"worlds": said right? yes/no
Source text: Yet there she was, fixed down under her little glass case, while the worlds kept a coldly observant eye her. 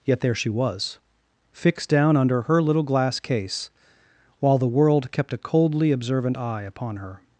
no